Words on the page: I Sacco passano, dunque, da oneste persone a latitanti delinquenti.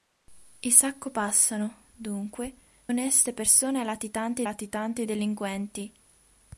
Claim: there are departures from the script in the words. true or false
true